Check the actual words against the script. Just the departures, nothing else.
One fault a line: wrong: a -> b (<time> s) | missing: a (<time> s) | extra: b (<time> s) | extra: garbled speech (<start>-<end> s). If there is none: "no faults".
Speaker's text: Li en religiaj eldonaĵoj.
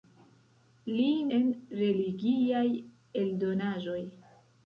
no faults